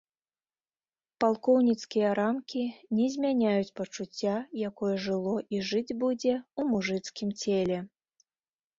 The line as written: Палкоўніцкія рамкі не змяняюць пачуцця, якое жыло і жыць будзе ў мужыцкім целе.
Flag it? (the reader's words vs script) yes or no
no